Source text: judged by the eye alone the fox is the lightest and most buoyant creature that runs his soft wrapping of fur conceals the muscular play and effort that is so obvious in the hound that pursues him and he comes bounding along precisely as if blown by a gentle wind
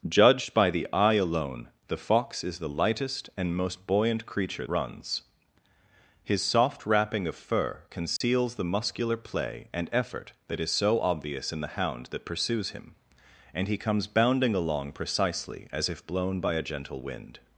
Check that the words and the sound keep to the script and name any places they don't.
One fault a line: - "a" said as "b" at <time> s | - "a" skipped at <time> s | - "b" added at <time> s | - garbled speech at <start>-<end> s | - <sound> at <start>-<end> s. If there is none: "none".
- "that" skipped at 4.7 s
- dropout at 8.2-8.2 s